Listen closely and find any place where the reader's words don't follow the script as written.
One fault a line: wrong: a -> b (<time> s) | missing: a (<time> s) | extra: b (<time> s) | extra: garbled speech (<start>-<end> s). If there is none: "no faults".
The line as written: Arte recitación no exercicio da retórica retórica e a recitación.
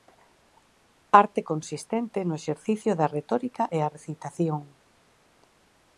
wrong: recitación -> consistente (1.5 s)
missing: retórica (3.6 s)